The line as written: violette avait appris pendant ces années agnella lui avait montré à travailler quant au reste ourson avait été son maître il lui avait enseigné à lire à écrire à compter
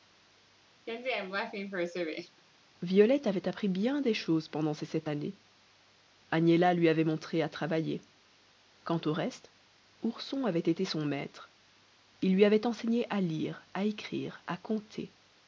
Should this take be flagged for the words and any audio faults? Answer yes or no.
yes